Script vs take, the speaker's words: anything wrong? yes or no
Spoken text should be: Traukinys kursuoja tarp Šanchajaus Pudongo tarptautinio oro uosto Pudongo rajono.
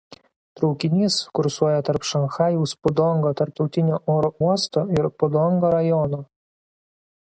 yes